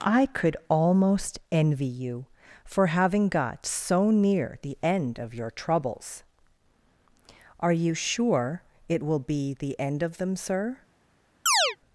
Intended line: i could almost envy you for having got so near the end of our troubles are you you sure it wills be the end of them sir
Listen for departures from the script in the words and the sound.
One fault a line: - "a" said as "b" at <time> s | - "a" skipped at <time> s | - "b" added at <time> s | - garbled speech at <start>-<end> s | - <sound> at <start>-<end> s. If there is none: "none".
- "our" said as "your" at 5.3 s
- "you" skipped at 7.9 s
- "wills" said as "will" at 9.0 s
- chirp at 11.5-11.8 s